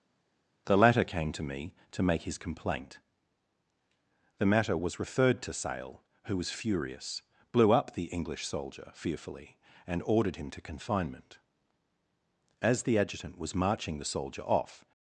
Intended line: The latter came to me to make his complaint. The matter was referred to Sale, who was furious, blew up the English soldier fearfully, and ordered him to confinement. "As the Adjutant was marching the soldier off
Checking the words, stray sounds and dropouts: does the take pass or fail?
pass